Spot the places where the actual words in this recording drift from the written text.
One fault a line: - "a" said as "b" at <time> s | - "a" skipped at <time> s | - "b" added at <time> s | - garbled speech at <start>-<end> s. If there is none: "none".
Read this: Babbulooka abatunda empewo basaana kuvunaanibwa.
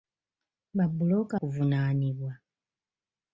- "abatunda empewo basaana" skipped at 1.4 s